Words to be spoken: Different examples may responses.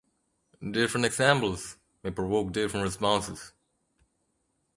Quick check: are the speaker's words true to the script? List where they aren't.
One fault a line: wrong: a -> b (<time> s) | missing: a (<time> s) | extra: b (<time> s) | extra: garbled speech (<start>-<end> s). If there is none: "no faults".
extra: provoke different (2.1 s)